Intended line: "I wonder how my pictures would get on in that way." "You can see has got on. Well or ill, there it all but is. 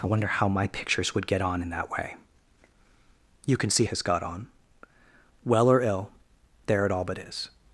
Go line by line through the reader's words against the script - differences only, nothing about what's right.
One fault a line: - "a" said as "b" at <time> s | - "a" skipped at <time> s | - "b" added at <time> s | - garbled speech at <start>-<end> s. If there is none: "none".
none